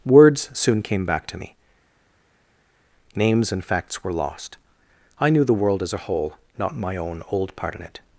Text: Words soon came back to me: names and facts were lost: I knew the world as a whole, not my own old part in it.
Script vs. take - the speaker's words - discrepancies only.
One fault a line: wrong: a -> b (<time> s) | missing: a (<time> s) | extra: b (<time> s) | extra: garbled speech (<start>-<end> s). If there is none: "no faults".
no faults